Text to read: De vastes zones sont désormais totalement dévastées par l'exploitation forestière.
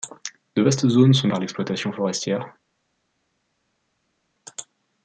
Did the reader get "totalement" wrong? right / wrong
wrong